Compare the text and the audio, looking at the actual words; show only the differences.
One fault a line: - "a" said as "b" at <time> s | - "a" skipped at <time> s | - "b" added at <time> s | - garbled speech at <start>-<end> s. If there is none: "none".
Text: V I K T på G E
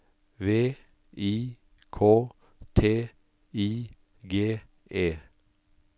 - "på" said as "I" at 3.5 s